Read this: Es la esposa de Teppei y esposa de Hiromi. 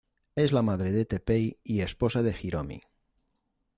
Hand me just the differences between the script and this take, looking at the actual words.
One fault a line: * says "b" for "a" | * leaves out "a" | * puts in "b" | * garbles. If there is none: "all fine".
* says "madre" for "esposa"